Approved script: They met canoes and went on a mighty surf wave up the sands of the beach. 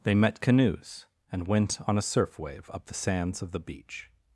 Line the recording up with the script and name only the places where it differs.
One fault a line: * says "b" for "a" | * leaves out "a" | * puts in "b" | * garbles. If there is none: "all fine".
* leaves out "mighty"